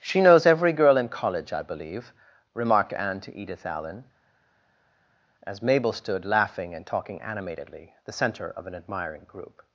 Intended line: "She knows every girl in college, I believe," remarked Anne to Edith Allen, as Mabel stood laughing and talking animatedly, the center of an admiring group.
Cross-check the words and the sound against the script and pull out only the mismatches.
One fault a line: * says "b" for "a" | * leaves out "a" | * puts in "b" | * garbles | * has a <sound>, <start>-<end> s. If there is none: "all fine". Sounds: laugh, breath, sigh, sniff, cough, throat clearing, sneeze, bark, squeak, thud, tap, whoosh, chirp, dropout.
all fine